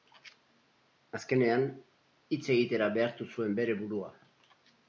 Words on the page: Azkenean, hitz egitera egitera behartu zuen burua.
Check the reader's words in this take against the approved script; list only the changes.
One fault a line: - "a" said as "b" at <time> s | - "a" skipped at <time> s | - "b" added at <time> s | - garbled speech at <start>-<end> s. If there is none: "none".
- "egitera" skipped at 2.9 s
- "bere" added at 3.6 s